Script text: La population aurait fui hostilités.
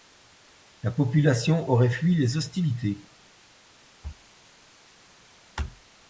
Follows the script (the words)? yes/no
no